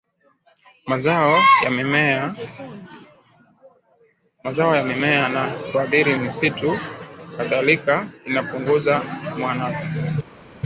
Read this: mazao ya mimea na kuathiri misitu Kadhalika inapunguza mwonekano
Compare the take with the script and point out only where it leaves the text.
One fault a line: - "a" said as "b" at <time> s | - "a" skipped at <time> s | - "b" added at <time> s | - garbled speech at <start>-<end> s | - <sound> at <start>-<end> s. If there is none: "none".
none